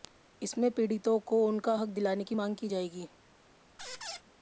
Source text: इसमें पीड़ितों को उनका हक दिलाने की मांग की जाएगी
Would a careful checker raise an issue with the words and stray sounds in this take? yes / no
yes